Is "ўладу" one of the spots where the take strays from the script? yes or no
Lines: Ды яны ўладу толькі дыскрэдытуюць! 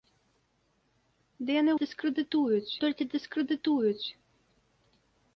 yes